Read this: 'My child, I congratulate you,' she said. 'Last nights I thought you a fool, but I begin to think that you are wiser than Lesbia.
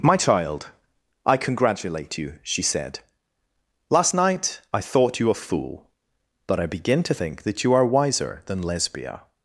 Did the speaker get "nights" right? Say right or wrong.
wrong